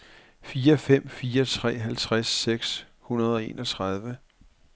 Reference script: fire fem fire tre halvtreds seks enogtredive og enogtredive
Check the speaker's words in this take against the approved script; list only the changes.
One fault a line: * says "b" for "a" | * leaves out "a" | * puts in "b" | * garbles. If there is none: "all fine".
* says "hundrede" for "enogtredive"